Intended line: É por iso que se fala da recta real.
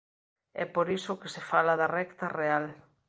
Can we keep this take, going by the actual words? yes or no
yes